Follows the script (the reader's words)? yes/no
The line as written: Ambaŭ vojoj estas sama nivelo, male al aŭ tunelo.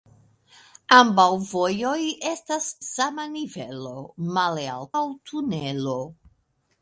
yes